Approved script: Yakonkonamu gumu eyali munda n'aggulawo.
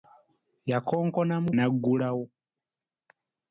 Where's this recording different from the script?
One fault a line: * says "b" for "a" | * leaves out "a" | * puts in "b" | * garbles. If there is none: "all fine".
* leaves out "gumu eyali munda"